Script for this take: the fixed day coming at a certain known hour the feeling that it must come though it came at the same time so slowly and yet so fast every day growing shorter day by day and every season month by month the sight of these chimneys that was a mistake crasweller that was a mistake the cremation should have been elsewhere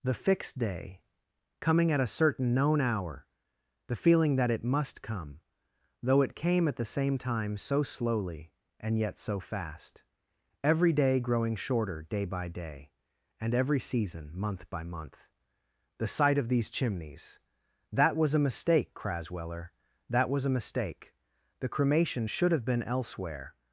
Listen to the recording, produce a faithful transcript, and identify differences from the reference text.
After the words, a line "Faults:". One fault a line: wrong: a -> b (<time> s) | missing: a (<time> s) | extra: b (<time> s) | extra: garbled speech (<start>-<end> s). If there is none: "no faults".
the fixed day coming at a certain known hour the feeling that it must come though it came at the same time so slowly and yet so fast every day growing shorter day by day and every season month by month the sight of these chimneys that was a mistake crasweller that was a mistake the cremation should have been elsewhere
Faults:
no faults